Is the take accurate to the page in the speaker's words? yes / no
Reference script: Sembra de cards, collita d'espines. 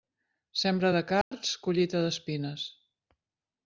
yes